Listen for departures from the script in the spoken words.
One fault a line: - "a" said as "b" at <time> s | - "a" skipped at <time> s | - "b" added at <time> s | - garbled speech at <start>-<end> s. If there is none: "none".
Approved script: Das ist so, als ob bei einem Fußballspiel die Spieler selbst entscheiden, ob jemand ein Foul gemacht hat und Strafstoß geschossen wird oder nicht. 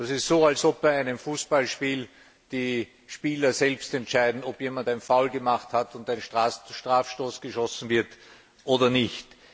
- "ein" added at 6.1 s